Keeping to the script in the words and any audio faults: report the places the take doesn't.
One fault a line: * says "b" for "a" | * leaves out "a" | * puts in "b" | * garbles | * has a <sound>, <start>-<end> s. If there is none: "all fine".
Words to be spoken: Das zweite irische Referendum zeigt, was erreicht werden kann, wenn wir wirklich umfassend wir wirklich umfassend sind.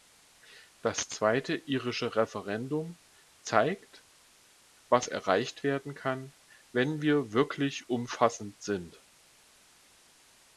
* leaves out "wir wirklich umfassend"